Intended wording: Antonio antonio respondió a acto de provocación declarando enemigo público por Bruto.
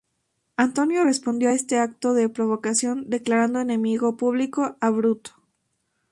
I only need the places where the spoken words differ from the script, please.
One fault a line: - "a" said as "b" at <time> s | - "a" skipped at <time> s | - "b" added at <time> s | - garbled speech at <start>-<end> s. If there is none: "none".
- "antonio" skipped at 1.1 s
- "este" added at 1.5 s
- "por" said as "a" at 4.8 s